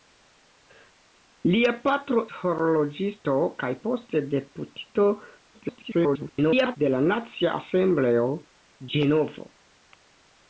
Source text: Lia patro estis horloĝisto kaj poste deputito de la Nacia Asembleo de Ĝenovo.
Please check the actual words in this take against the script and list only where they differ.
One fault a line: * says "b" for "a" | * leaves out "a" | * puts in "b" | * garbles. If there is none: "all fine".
* leaves out "estis"
* garbles
* leaves out "de"